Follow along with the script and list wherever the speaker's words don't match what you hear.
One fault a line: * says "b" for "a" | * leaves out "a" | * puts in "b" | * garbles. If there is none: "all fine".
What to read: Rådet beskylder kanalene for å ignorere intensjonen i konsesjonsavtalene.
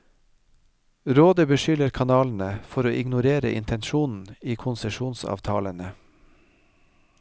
all fine